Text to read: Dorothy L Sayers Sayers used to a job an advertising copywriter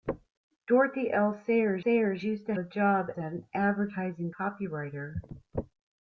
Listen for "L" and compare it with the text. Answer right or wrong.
right